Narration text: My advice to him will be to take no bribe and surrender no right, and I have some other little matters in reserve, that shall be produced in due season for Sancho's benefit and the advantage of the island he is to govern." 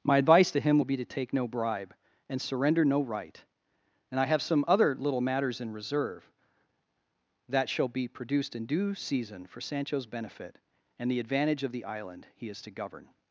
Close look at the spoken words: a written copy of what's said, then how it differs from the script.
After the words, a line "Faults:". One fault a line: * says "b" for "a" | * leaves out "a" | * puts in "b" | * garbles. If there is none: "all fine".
My advice to him will be to take no bribe and surrender no right, and I have some other little matters in reserve, that shall be produced in due season for Sancho's benefit and the advantage of the island he is to govern."
Faults:
all fine